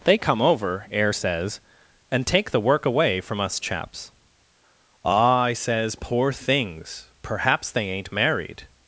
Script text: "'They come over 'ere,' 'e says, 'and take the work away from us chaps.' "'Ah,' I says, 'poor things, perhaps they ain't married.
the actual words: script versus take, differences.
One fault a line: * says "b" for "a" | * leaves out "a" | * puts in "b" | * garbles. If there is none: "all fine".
* says "air" for "ere e"